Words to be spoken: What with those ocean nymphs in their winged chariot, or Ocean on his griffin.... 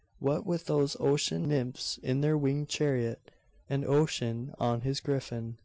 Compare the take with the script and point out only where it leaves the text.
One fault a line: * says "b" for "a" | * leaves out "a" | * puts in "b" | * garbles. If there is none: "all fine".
* says "and" for "or"